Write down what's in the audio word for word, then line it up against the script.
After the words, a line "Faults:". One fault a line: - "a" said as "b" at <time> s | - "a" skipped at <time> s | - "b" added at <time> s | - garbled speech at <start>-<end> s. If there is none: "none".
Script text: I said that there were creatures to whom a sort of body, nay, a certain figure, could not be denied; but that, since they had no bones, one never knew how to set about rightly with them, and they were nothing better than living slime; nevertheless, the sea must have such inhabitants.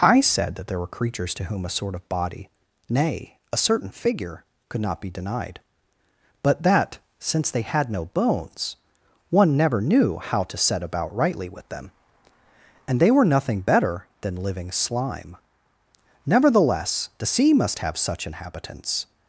I said that there were creatures to whom a sort of body, nay, a certain figure, could not be denied; but that, since they had no bones, one never knew how to set about rightly with them, and they were nothing better than living slime; nevertheless, the sea must have such inhabitants.
Faults:
none